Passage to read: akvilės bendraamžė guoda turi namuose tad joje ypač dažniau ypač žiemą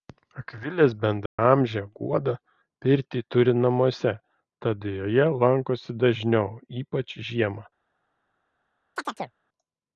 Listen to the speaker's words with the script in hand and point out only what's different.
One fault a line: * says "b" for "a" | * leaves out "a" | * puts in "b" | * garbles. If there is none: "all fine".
* puts in "pirtį"
* says "lankosi" for "ypač"